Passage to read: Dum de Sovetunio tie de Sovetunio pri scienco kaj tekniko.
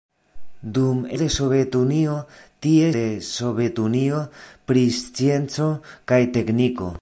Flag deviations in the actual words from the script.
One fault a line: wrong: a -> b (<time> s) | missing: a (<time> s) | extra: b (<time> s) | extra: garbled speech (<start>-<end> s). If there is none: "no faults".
no faults